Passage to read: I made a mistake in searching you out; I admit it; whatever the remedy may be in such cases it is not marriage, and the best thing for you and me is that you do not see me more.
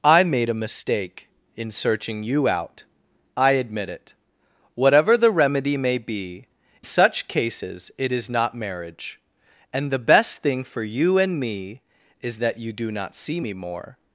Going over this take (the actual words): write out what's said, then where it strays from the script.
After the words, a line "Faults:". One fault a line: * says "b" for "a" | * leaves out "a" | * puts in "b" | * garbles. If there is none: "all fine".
I made a mistake in searching you out; I admit it; whatever the remedy may be such cases it is not marriage, and the best thing for you and me is that you do not see me more.
Faults:
* leaves out "in"